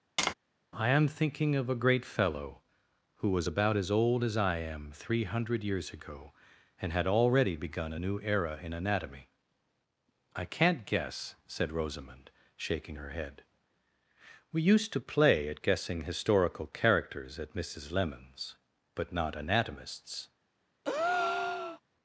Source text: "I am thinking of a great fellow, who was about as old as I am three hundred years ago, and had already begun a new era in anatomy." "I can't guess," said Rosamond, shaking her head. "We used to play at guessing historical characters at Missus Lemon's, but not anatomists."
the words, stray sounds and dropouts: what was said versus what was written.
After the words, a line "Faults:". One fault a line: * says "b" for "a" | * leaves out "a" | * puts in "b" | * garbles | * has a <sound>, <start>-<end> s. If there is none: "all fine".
"I am thinking of a great fellow, who was about as old as I am three hundred years ago, and had already begun a new era in anatomy." "I can't guess," said Rosamond, shaking her head. "We used to play at guessing historical characters at Missus Lemon's, but not anatomists."
Faults:
* has a tap, 0.2-0.3 s
* has a breath, 20.8-21.8 s